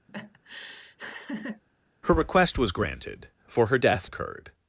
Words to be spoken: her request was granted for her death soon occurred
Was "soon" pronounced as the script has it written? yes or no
no